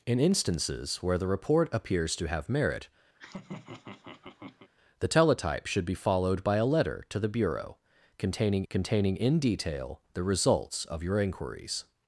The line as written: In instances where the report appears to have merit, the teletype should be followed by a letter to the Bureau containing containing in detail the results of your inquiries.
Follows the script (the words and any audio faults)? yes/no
no